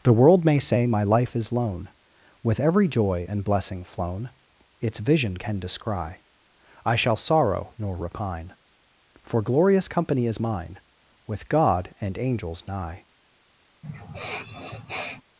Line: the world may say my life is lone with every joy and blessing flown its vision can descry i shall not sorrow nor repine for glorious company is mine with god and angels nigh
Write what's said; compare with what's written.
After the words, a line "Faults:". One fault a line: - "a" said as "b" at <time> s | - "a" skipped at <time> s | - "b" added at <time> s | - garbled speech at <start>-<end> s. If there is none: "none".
the world may say my life is lone with every joy and blessing flown its vision can descry i shall sorrow nor repine for glorious company is mine with god and angels nigh
Faults:
- "not" skipped at 7.2 s